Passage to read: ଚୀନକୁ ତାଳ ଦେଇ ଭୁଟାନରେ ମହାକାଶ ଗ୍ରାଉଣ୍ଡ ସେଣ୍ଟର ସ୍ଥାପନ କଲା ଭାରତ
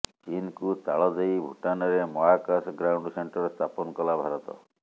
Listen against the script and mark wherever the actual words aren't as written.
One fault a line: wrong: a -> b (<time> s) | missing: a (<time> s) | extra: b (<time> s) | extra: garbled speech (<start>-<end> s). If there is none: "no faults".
no faults